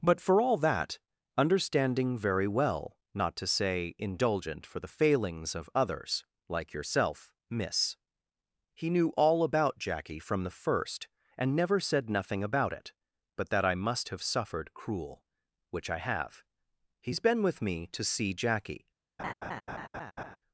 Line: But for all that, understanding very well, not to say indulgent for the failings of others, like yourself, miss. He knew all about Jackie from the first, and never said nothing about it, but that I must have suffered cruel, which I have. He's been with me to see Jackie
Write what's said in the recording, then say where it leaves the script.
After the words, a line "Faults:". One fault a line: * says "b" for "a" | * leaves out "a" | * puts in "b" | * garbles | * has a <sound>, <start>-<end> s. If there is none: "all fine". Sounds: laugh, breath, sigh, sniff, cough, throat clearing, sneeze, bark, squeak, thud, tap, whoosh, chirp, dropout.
But for all that, understanding very well, not to say indulgent for the failings of others, like yourself, miss. He knew all about Jackie from the first, and never said nothing about it, but that I must have suffered cruel, which I have. He's been with me to see Jackie
Faults:
* has a laugh, 19.2-20.4 s